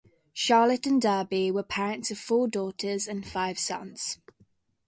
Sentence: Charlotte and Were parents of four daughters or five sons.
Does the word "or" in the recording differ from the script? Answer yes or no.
yes